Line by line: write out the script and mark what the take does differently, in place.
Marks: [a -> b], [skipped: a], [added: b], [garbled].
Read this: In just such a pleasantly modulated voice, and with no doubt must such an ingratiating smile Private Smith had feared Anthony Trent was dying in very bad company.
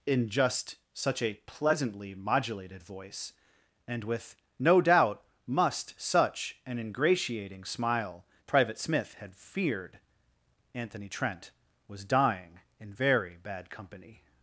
In just such a pleasantly modulated voice, and with no doubt must such an ingratiating smile Private Smith had feared Anthony Trent was dying in very bad company.